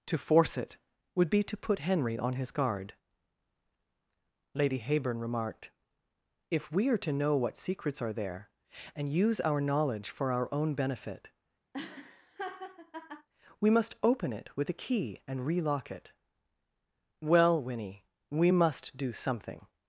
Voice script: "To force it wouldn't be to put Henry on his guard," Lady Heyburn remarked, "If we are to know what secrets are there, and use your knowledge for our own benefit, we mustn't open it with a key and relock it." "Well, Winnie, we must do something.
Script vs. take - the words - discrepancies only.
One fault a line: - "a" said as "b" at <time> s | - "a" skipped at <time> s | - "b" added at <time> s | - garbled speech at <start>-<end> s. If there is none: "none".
- "wouldn't" said as "would" at 1.1 s
- "your" said as "our" at 9.4 s
- "mustn't" said as "must" at 13.7 s